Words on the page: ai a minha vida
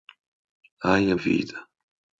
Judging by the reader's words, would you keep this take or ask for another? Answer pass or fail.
fail